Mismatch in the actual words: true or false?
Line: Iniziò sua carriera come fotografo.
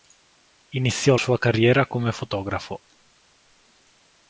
false